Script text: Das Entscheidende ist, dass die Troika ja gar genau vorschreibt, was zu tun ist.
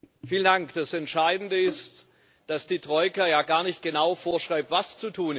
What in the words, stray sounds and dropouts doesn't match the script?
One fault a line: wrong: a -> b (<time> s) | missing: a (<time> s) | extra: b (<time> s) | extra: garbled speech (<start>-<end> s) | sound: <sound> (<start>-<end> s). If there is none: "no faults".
extra: nicht (3.6 s)